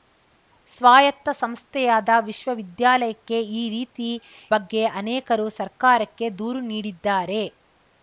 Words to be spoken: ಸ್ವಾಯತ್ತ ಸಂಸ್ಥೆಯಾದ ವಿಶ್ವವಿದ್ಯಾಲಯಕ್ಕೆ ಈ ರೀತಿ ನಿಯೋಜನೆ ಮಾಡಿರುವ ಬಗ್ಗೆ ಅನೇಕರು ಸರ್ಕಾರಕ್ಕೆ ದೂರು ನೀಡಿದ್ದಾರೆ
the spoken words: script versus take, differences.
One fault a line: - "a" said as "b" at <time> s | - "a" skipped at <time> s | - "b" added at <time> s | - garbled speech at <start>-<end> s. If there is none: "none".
- "ನಿಯೋಜನೆ ಮಾಡಿರುವ" skipped at 4.1 s